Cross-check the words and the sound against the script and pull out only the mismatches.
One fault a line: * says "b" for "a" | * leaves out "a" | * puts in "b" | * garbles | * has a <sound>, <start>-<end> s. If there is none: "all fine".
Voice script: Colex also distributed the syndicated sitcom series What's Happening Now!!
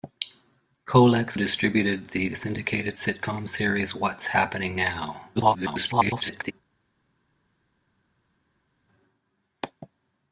* leaves out "also"
* garbles